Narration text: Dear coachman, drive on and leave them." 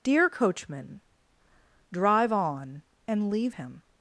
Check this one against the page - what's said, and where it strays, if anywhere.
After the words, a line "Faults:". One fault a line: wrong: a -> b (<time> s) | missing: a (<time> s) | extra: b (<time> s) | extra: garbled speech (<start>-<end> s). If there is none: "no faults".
Dear coachman, drive on and leave him."
Faults:
wrong: them -> him (3.5 s)